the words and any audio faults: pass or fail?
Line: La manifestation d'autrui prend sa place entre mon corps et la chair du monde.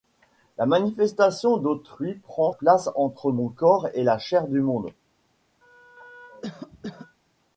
fail